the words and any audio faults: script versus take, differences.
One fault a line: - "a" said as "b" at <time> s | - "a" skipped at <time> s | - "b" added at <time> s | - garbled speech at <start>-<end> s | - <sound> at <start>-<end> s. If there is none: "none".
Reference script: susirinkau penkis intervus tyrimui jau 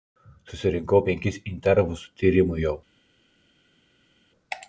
none